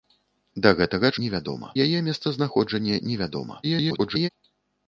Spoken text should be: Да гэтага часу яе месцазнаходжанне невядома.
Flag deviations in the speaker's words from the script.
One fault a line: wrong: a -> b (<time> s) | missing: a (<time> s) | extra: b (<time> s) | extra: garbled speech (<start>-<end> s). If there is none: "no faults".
wrong: часу -> невядома (1.2 s)
extra: garbled speech (3.6-4.3 s)